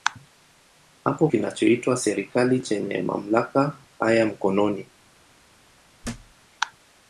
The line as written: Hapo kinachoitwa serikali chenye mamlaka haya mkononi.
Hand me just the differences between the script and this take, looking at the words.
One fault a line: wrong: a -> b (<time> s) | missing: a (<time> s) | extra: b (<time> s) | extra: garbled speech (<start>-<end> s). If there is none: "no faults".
no faults